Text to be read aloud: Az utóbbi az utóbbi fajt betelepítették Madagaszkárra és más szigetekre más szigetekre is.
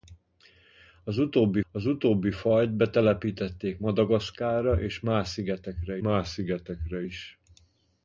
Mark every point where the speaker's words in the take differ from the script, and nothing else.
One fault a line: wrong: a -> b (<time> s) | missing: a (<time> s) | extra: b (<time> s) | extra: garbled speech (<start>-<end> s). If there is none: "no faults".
no faults